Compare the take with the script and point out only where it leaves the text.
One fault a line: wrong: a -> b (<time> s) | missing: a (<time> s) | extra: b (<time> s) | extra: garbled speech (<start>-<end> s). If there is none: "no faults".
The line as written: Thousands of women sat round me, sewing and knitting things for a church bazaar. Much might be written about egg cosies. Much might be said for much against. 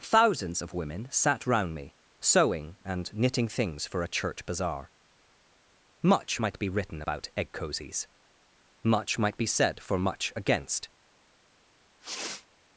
no faults